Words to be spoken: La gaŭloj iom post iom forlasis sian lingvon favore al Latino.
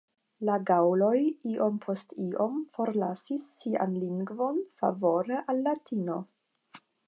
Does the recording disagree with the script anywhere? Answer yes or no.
no